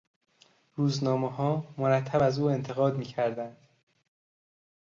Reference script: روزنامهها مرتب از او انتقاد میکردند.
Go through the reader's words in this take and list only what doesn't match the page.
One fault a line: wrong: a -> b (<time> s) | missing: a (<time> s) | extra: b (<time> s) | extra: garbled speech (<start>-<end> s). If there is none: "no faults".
no faults